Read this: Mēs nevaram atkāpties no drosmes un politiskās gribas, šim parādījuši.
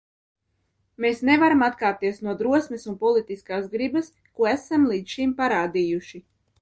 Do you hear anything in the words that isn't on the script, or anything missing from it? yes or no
yes